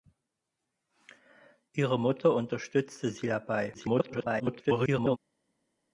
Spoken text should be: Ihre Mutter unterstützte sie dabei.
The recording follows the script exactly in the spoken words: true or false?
false